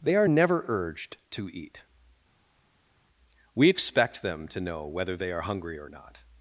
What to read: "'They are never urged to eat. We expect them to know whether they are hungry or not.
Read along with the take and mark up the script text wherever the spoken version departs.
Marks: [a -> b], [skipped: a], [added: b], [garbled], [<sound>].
"'They are never urged to eat. We expect them to know whether they are hungry or not.